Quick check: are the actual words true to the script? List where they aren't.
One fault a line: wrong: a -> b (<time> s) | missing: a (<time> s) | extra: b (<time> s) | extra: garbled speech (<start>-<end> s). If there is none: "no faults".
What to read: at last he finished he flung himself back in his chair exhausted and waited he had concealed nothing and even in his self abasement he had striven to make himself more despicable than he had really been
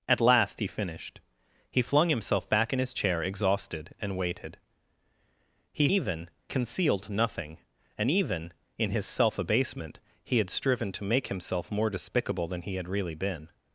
wrong: had -> even (5.9 s)